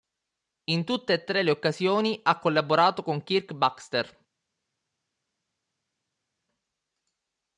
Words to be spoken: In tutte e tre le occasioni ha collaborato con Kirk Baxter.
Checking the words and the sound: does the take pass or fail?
pass